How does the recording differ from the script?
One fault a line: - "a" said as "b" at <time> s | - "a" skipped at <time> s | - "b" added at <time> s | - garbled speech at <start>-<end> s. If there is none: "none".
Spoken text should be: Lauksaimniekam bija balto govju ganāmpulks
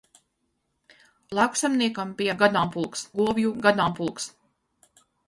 - "balto" said as "ganāmpulks" at 2.4 s